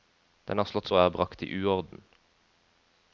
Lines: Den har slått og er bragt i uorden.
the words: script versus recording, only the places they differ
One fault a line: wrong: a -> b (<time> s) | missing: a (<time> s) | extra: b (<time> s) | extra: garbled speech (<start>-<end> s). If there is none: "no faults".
no faults